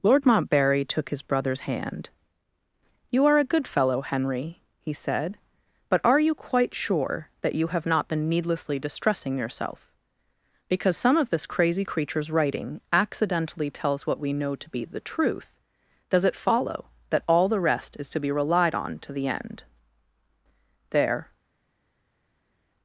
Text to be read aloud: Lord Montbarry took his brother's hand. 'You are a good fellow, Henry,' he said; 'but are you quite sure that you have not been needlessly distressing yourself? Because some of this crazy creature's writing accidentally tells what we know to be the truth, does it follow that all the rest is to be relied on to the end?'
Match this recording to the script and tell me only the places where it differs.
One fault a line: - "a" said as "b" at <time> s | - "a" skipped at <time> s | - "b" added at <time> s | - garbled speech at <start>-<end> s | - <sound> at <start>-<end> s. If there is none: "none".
- "There" added at 20.9 s